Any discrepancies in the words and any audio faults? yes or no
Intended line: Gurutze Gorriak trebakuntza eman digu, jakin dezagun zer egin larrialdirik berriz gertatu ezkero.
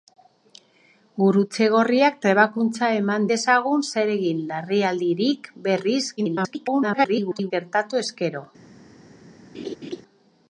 yes